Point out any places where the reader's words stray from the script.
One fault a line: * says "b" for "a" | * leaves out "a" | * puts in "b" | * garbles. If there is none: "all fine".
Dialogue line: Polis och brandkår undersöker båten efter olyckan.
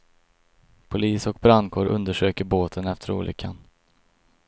all fine